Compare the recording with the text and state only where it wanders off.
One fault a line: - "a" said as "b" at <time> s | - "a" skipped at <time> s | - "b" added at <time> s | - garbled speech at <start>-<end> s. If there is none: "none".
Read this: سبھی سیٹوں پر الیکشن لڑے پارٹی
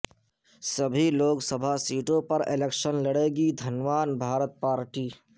- "لوک سبھا" added at 1.1 s
- "گی دھنوان بھارت" added at 3.4 s